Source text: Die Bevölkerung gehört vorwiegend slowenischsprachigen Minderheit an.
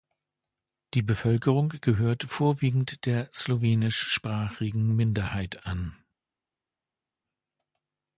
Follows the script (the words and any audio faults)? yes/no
no